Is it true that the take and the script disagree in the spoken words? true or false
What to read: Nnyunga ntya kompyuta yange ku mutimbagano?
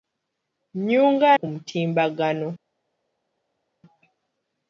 true